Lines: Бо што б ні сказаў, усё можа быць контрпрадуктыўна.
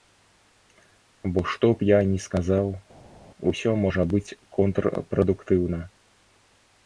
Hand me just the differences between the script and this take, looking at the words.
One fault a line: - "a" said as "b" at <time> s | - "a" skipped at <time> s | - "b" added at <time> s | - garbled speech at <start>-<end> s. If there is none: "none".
- "я" added at 1.9 s